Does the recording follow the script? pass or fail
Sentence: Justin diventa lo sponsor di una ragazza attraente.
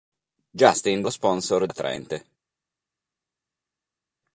fail